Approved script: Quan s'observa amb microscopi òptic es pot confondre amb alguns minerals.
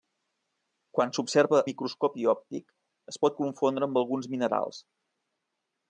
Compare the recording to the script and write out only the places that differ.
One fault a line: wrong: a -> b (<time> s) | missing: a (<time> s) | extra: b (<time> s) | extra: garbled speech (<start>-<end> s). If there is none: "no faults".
missing: amb (1.6 s)